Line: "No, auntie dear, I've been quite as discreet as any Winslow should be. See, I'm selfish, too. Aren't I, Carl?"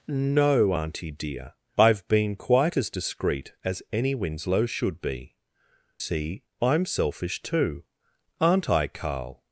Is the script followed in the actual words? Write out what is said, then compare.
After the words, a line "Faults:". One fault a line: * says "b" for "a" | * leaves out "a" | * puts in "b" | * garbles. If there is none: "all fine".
"No, auntie dear, I've been quite as discreet as any Winslow should be. See, I'm selfish, too. Aren't I, Carl?"
Faults:
all fine